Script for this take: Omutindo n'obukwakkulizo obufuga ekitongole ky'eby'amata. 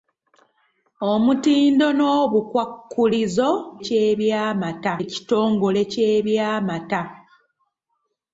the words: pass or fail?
fail